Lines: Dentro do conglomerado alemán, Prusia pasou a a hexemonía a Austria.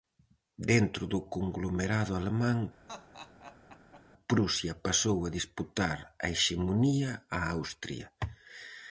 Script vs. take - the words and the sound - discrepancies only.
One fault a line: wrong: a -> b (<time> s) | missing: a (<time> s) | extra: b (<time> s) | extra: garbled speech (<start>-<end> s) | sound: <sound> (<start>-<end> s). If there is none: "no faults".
sound: laugh (2.9-4.0 s)
extra: disputar (5.4 s)